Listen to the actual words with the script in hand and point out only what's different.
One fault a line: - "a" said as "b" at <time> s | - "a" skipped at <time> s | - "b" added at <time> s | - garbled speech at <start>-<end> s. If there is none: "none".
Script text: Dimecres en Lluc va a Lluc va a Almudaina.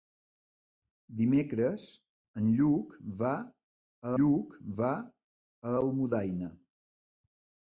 none